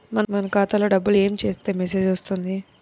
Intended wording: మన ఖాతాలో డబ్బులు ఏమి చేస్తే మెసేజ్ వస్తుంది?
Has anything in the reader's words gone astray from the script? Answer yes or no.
no